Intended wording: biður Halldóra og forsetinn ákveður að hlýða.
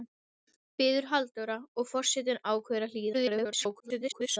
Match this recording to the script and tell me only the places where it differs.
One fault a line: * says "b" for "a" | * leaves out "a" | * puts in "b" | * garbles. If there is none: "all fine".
* garbles